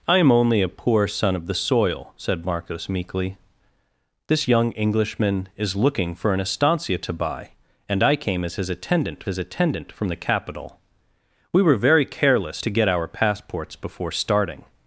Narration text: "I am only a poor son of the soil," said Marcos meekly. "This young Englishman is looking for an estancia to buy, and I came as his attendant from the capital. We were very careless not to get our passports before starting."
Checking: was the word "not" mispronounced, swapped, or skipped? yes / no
yes